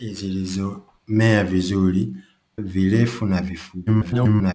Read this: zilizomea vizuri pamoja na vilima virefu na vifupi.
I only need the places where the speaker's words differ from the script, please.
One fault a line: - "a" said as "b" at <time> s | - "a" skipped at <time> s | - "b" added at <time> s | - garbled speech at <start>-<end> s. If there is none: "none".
- "pamoja na vilima" skipped at 2.1 s
- garbled speech at 3.9-4.5 s